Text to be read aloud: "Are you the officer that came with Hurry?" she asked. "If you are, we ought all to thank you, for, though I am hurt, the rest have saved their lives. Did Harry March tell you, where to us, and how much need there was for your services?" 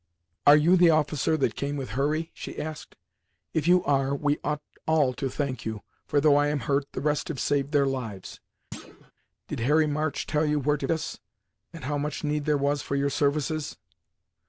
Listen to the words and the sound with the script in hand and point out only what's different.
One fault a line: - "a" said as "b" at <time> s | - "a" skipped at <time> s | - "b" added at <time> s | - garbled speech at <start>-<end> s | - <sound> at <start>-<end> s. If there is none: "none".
- thud at 8.7-9.1 s